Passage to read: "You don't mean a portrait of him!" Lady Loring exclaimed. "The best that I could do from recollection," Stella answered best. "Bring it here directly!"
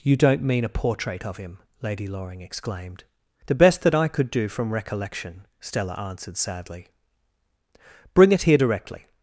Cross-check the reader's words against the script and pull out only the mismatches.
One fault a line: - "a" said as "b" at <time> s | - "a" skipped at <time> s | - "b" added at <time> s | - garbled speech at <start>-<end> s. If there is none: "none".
- "best" said as "sadly" at 6.4 s